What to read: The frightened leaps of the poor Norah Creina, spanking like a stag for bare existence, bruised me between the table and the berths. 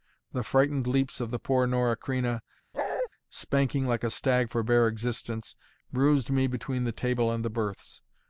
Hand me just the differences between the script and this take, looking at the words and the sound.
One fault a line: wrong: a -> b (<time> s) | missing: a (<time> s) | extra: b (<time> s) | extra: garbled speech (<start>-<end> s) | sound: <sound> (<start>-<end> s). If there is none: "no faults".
sound: bark (2.7-3.1 s)